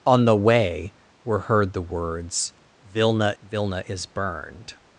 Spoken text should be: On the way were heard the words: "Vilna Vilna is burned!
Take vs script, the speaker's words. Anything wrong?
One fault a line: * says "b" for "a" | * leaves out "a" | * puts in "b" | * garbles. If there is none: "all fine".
all fine